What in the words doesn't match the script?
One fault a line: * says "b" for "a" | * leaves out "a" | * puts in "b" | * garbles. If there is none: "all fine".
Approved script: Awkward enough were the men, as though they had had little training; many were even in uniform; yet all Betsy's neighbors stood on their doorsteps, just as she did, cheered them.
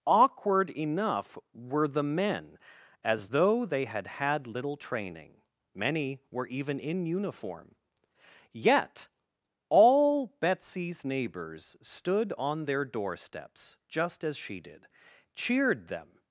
all fine